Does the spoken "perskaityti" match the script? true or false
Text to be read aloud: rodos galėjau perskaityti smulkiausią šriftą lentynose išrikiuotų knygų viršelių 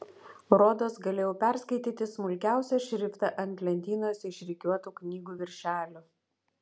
true